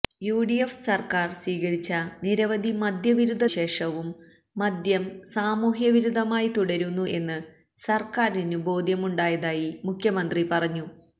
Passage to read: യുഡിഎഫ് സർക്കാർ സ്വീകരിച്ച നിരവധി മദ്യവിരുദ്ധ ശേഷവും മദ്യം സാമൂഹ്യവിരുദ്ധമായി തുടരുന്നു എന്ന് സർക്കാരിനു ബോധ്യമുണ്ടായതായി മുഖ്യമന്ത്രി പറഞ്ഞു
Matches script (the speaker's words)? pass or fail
pass